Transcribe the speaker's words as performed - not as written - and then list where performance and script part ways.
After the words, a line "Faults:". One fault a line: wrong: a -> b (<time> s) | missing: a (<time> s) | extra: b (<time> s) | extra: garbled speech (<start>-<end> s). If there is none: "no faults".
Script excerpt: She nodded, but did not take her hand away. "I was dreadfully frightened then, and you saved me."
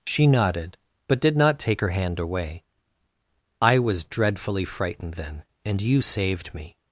She nodded, but did not take her hand away. "I was dreadfully frightened then, and you saved me."
Faults:
no faults